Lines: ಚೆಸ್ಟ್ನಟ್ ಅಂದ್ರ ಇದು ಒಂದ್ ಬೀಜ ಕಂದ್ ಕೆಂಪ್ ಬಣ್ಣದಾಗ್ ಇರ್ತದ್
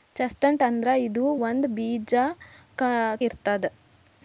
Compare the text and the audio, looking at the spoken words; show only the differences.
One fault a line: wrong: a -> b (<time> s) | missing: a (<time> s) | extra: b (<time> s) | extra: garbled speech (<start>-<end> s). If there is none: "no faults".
missing: ಕಂದ್ ಕೆಂಪ್ ಬಣ್ಣದಾಗ್ (2.1 s)